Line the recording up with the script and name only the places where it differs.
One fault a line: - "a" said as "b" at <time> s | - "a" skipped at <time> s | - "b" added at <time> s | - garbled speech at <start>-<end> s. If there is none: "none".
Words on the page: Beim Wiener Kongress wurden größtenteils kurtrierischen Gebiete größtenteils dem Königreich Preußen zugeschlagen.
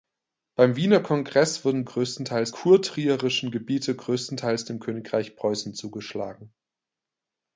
none